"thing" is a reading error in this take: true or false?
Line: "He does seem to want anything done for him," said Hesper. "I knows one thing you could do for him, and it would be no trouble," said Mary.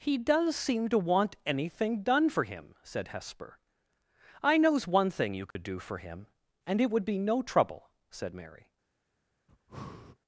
false